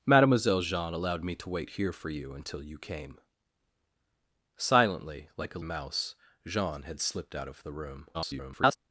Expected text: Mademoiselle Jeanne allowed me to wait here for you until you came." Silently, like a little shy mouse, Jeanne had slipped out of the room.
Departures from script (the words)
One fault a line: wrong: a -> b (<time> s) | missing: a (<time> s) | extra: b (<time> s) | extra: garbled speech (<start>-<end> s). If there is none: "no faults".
missing: little shy (5.6 s)
extra: garbled speech (8.1-8.8 s)